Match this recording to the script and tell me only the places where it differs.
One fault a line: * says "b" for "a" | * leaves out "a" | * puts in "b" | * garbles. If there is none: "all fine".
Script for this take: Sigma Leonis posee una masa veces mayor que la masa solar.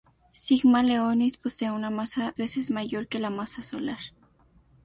all fine